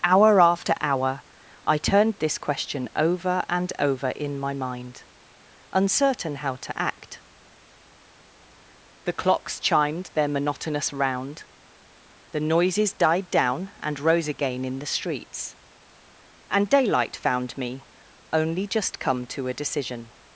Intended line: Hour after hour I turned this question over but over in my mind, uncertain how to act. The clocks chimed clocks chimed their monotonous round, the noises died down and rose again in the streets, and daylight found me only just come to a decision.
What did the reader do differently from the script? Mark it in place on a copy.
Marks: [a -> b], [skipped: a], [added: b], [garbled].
Hour after hour I turned this question over [but -> and] over in my mind, uncertain how to act. The clocks chimed [skipped: clocks chimed] their monotonous round, the noises died down and rose again in the streets, and daylight found me only just come to a decision.